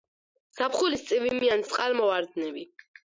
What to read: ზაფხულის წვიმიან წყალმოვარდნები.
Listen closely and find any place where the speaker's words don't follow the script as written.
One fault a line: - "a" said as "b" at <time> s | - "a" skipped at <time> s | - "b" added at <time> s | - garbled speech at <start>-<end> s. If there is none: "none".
none